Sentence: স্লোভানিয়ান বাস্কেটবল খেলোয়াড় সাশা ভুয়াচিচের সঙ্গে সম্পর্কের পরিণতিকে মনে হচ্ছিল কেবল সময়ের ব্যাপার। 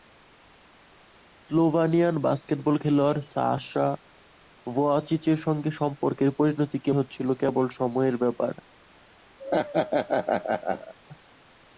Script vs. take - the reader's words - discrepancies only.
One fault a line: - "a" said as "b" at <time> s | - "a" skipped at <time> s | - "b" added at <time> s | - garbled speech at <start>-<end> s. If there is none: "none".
- "মনে" skipped at 6.9 s